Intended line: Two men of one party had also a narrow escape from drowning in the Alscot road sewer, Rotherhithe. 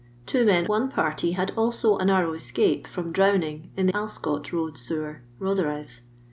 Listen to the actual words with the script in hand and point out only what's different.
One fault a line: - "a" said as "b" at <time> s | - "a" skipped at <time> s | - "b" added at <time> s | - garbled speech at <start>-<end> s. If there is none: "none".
- "of" skipped at 0.7 s
- "the" skipped at 3.9 s